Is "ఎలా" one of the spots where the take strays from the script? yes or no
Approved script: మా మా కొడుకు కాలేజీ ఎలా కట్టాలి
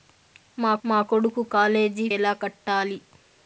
no